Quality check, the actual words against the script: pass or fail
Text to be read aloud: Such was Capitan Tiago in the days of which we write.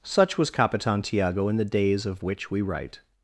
pass